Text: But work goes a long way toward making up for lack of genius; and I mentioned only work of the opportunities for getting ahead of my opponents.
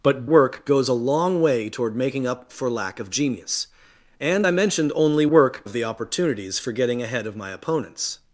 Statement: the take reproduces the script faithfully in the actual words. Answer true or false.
true